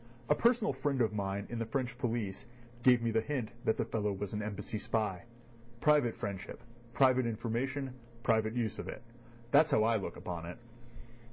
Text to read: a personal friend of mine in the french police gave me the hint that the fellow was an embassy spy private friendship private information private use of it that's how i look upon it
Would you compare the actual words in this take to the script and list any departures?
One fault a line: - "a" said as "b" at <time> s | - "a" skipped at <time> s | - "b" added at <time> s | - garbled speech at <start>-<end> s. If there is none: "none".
none